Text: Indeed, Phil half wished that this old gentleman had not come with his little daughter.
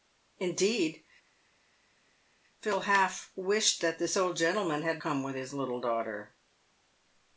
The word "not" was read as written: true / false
false